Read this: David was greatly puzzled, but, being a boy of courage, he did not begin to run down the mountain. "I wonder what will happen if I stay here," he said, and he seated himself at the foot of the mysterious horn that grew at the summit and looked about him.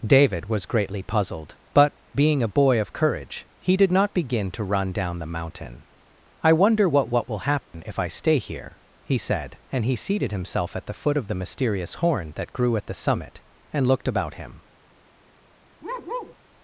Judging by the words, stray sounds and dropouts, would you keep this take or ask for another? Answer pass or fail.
fail